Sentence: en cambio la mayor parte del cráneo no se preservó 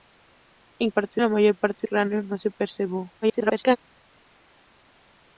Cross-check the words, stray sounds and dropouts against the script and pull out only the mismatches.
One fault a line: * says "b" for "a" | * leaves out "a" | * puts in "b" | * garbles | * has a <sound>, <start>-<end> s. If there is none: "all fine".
* says "parte" for "cambio"
* leaves out "del"
* garbles